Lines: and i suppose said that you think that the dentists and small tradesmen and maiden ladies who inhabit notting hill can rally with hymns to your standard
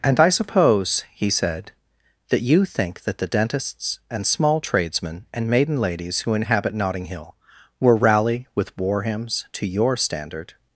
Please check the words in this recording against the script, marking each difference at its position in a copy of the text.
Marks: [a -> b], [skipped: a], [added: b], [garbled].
and i suppose [added: he] said that you think that the dentists and small tradesmen and maiden ladies who inhabit notting hill [can -> will] rally with [added: war] hymns to your standard